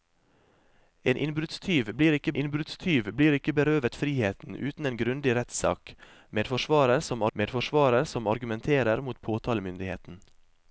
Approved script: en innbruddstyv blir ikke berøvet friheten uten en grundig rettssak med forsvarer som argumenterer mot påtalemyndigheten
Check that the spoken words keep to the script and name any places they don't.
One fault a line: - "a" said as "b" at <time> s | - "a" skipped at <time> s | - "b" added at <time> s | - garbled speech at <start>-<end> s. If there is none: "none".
- "innbruddstyv blir ikke" added at 2.4 s
- "med forsvarer som" added at 7.3 s